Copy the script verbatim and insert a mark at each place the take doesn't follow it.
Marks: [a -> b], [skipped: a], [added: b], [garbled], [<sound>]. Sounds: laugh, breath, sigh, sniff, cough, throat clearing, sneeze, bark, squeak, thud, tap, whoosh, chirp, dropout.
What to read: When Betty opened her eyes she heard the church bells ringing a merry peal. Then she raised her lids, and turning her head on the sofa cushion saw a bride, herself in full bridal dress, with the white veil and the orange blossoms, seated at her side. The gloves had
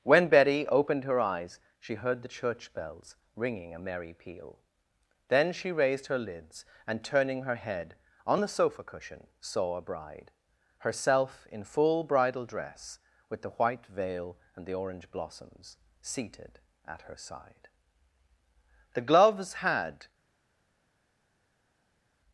When Betty opened her eyes she heard the church bells ringing a merry peal. Then she raised her lids, and turning her head on the sofa cushion saw a bride, herself in full bridal dress, with the white veil and the orange blossoms, seated at her side. The gloves had